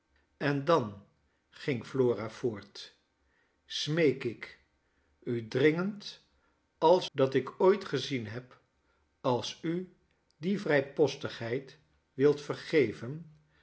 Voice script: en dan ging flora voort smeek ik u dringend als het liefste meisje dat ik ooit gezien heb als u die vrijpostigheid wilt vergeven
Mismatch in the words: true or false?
true